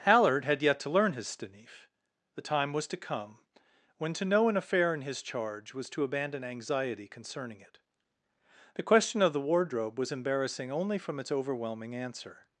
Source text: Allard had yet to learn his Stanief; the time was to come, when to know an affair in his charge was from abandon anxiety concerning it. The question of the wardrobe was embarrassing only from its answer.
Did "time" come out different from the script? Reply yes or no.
no